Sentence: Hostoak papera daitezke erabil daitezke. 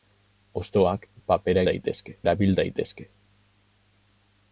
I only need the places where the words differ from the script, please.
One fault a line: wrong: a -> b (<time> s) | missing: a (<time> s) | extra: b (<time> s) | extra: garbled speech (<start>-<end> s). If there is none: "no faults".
no faults